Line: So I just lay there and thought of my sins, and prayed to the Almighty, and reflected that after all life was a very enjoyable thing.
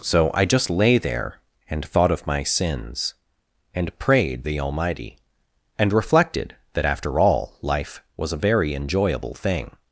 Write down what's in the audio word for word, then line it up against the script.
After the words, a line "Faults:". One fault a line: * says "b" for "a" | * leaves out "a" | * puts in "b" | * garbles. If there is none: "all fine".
So I just lay there and thought of my sins, and prayed the Almighty, and reflected that after all life was a very enjoyable thing.
Faults:
* leaves out "to"